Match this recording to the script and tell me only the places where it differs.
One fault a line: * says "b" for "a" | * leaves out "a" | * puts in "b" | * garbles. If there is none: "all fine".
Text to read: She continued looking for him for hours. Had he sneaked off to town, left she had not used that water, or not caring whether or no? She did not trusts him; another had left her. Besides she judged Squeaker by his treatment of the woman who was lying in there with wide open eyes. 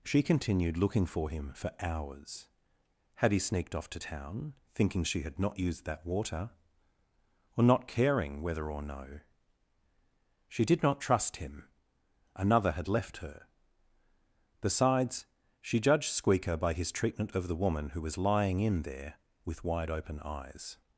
* says "thinking" for "left"
* says "trust" for "trusts"